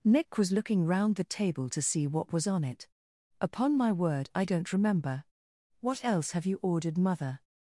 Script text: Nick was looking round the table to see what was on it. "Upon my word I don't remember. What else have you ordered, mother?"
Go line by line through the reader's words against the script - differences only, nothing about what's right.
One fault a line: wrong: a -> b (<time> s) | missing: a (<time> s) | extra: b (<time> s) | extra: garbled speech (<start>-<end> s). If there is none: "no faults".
no faults